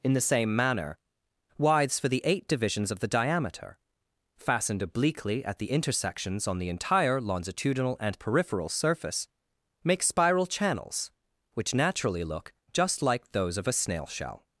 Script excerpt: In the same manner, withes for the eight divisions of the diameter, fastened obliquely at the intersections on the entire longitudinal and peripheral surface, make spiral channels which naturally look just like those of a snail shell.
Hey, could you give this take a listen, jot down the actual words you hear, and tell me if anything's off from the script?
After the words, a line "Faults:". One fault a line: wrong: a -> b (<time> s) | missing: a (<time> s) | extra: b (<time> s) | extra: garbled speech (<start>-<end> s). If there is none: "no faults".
In the same manner, withes for the eight divisions of the diameter, fastened obliquely at the intersections on the entire longitudinal and peripheral surface, make spiral channels which naturally look just like those of a snail shell.
Faults:
no faults